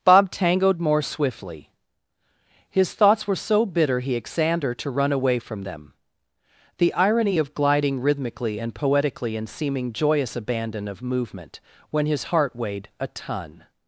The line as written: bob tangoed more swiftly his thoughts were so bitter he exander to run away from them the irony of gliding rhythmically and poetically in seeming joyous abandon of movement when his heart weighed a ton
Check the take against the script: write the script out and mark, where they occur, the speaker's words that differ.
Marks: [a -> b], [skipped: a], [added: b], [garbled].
bob tangoed more swiftly his thoughts were so bitter he exander to run away from them the irony of gliding rhythmically and poetically in seeming joyous abandon of movement when his heart weighed a ton